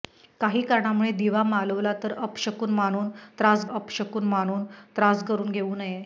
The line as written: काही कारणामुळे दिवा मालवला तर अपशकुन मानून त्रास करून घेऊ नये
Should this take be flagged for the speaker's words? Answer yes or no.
yes